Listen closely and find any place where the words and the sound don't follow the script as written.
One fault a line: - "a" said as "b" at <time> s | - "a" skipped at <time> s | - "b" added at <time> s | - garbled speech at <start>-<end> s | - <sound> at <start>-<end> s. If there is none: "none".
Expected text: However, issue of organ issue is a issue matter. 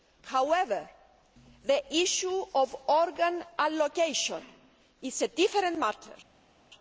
- "the" added at 1.6 s
- "issue" said as "allocation" at 3.6 s
- "issue" said as "different" at 5.3 s